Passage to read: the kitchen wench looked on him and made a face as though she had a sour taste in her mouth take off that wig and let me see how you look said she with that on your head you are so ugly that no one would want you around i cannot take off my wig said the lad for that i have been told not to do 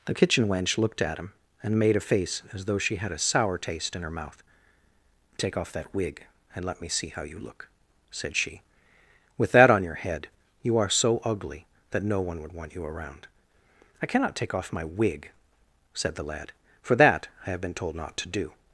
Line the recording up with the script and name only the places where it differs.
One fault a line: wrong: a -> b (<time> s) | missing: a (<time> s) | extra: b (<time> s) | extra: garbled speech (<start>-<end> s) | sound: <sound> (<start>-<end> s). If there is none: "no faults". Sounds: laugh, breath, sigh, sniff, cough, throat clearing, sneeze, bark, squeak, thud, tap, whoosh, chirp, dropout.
wrong: on -> at (1.0 s)